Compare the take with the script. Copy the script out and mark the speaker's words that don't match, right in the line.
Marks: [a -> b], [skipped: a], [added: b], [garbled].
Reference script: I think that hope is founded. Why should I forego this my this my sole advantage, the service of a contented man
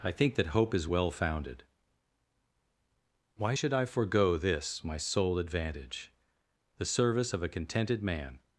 I think that hope is [added: well] founded. Why should I forego this my [skipped: this my] sole advantage, the service of a contented man